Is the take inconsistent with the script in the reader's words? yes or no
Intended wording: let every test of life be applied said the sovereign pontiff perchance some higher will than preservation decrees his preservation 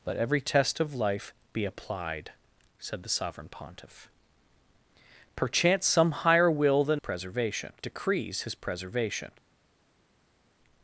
no